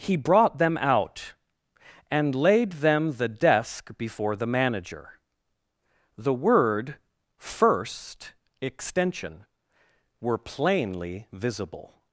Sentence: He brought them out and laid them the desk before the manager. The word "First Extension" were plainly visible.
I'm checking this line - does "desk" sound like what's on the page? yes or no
yes